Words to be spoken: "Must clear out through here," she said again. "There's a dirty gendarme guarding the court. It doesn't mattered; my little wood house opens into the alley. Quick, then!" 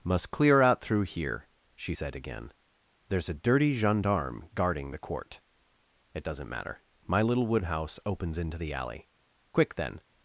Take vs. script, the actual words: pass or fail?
fail